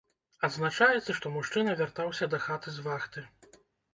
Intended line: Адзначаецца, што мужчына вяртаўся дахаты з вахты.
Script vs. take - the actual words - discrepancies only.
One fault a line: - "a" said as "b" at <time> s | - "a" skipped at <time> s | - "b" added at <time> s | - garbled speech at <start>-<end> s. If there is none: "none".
none